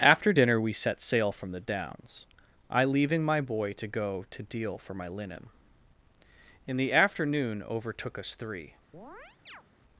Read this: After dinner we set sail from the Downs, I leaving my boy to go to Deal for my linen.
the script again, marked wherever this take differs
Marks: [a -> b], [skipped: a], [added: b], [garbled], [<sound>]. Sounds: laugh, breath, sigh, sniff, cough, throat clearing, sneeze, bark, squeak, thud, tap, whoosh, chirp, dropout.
After dinner we set sail from the Downs, I leaving my boy to go to Deal for my linen. [added: In the afternoon overtook us three] [chirp]